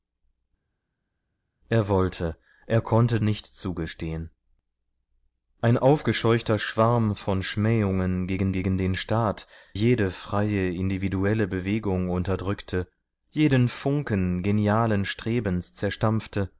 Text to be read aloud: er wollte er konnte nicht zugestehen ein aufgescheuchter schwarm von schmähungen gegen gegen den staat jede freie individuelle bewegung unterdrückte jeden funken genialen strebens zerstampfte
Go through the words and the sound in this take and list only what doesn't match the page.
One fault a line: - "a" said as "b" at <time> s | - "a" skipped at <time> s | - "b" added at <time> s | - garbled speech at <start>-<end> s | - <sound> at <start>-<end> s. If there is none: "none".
none